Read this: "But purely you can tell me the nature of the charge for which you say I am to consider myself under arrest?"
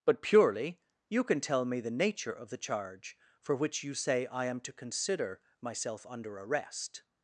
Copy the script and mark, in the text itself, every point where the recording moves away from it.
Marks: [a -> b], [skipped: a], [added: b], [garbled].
"But purely you can tell me the nature of the charge for which you say I am to consider myself under arrest?"